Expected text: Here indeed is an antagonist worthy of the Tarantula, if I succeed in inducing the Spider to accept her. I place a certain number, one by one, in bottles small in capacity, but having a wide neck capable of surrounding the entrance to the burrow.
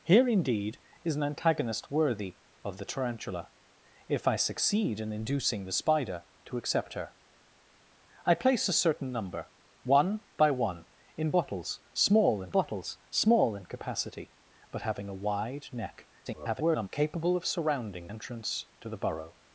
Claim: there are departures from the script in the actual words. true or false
true